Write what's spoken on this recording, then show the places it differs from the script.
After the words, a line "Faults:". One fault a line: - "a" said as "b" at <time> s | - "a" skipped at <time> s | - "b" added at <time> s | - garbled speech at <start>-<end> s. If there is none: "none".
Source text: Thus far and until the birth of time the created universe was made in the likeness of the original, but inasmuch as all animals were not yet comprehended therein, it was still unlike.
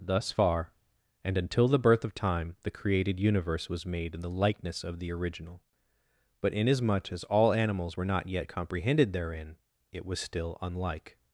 Thus far and until the birth of time the created universe was made in the likeness of the original, but inasmuch as all animals were not yet comprehended therein, it was still unlike.
Faults:
none